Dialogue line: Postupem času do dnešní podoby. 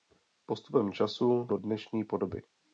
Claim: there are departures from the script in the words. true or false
false